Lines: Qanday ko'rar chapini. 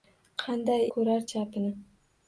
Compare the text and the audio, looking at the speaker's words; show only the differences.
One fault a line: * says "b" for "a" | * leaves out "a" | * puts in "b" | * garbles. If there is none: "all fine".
all fine